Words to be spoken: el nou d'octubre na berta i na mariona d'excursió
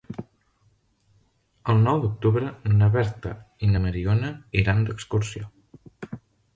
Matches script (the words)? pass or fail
fail